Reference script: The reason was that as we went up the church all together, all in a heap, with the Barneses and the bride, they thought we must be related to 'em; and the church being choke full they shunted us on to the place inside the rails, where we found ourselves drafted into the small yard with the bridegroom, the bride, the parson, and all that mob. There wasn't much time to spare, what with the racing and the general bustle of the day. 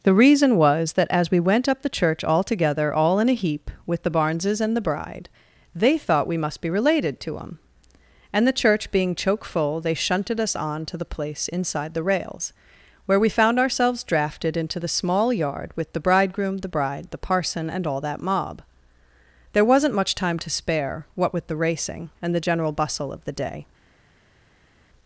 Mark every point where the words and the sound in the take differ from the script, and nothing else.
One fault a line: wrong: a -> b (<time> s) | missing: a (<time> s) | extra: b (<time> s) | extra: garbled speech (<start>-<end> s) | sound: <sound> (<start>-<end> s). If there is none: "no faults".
no faults